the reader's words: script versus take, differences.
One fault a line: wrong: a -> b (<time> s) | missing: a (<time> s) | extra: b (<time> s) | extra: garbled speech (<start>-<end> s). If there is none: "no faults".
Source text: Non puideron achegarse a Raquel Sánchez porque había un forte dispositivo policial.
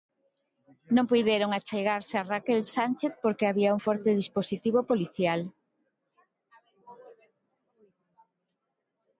no faults